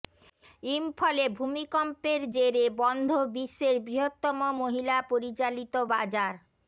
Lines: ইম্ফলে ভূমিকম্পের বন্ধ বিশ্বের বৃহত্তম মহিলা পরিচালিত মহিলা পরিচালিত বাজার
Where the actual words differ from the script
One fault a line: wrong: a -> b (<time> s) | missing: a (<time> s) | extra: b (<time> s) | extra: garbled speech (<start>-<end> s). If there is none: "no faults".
extra: জেরে (2.3 s)
missing: মহিলা পরিচালিত (5.7 s)